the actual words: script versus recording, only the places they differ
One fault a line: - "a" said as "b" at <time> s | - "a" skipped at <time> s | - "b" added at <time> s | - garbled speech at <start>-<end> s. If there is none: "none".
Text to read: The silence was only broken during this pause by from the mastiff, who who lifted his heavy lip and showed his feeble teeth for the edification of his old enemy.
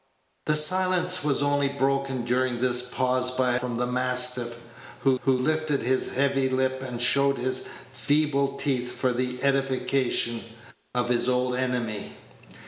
none